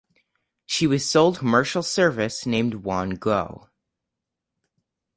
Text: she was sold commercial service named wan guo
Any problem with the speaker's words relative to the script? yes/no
no